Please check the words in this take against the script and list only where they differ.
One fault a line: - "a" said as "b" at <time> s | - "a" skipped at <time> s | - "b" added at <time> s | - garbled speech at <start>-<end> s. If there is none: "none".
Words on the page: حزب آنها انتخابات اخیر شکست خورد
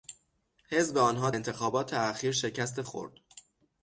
none